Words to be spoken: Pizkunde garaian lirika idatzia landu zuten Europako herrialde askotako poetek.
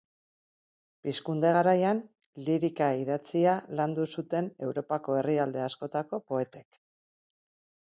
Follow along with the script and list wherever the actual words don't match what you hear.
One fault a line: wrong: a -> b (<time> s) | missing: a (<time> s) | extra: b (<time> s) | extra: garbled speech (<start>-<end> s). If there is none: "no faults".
no faults